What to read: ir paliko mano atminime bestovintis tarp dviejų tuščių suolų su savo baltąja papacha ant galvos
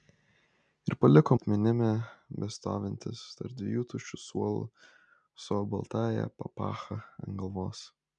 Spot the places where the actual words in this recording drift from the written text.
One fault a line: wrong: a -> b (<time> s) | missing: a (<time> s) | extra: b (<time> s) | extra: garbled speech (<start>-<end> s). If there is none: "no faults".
missing: mano (1.4 s)